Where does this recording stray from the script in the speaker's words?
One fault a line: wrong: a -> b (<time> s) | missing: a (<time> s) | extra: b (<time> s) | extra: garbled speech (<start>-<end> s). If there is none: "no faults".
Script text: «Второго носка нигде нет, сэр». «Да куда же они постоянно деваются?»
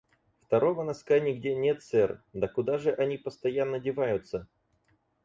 no faults